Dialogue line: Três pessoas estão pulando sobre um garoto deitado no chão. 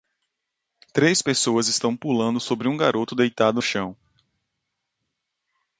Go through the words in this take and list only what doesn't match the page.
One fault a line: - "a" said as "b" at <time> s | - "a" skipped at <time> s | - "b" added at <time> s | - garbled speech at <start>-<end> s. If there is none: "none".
- "no" skipped at 3.6 s